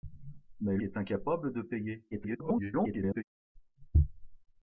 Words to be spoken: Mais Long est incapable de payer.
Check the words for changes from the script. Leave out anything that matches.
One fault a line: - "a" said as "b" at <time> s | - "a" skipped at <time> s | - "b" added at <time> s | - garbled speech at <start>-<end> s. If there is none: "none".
- "Long" skipped at 0.8 s
- garbled speech at 2.1-3.2 s